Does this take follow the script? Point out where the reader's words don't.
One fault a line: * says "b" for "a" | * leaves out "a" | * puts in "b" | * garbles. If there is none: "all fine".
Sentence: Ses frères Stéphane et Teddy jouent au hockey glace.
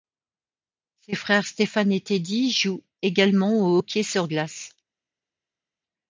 * puts in "également"
* puts in "sur"